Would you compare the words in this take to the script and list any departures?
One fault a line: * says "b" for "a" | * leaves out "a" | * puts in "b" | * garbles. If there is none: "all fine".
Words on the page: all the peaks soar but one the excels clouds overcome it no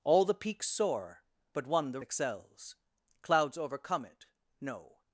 all fine